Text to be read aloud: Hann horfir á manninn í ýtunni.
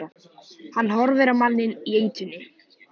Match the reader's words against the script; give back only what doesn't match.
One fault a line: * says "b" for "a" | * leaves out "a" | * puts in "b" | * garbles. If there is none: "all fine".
all fine